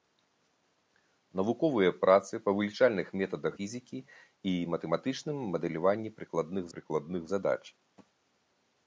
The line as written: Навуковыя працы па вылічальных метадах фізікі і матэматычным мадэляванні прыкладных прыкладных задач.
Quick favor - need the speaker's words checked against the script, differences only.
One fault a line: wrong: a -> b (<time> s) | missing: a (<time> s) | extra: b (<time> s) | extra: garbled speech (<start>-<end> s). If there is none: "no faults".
no faults